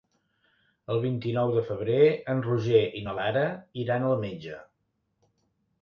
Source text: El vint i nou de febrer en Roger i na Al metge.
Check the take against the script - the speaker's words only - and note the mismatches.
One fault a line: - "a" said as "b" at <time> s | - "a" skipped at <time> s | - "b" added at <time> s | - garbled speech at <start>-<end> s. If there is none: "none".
- "Lara iran" added at 3.2 s